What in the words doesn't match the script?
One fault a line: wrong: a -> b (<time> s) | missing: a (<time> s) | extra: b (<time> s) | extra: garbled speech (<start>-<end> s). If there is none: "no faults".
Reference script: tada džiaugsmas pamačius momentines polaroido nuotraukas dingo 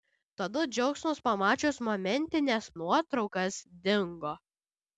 missing: polaroido (2.7 s)